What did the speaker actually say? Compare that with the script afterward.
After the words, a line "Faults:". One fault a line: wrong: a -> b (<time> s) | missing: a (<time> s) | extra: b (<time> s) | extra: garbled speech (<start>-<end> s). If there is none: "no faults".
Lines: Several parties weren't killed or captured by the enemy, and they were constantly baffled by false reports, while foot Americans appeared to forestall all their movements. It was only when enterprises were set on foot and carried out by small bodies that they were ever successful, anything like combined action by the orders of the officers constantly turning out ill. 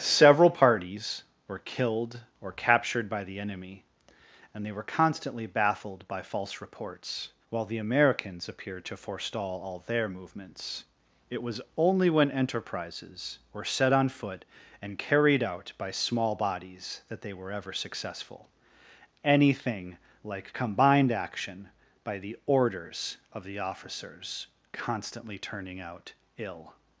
Several parties were killed or captured by the enemy, and they were constantly baffled by false reports, while the Americans appeared to forestall all their movements. It was only when enterprises were set on foot and carried out by small bodies that they were ever successful, anything like combined action by the orders of the officers constantly turning out ill.
Faults:
wrong: weren't -> were (1.5 s)
wrong: foot -> the (7.7 s)